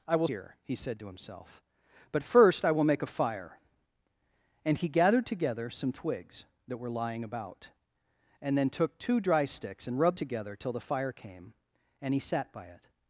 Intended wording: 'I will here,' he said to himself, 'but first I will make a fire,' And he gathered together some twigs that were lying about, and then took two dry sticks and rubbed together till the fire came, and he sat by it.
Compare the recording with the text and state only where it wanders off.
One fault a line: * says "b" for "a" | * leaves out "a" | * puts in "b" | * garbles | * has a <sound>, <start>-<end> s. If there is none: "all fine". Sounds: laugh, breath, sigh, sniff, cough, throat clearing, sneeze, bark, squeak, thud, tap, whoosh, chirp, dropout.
all fine